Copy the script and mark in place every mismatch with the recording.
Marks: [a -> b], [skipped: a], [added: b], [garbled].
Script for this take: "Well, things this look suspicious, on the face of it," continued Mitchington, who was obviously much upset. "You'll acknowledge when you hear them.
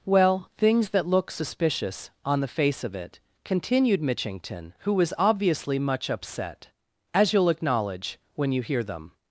"Well, things [this -> that] look suspicious, on the face of it," continued Mitchington, who was obviously much upset. [added: As] "You'll acknowledge when you hear them.